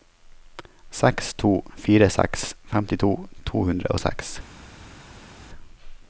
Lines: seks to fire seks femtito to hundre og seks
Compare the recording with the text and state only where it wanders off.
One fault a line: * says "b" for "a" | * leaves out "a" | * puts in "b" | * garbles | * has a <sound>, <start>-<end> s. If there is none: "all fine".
all fine